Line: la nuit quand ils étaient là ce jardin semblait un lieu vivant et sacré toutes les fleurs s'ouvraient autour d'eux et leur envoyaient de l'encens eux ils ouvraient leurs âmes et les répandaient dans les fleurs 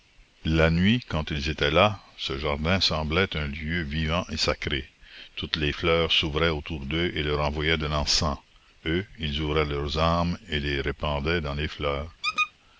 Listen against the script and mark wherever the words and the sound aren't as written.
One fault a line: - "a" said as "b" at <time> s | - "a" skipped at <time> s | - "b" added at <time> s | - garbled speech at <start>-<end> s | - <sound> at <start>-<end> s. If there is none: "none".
- squeak at 12.2-12.5 s